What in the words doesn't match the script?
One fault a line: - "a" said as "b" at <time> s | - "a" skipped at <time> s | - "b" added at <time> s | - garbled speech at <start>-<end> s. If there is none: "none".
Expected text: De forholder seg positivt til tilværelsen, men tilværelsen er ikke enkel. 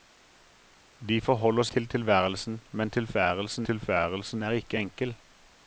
- "seg positivt" skipped at 1.7 s
- "tilværelsen" added at 3.6 s